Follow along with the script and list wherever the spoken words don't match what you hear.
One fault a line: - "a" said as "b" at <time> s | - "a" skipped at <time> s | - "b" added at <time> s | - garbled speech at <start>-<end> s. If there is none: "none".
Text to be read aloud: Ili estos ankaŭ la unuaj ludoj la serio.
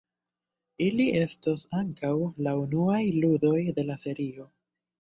- "de" added at 3.8 s